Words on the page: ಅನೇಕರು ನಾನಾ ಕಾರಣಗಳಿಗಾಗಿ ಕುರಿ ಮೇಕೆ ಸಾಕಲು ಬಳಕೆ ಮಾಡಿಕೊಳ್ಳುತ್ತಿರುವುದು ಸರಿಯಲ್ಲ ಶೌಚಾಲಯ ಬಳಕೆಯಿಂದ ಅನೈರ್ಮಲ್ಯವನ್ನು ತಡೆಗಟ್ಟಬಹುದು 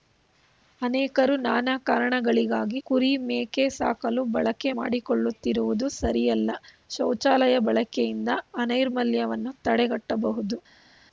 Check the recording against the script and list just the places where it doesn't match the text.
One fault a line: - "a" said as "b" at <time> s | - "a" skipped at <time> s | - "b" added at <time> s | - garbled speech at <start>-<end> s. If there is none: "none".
none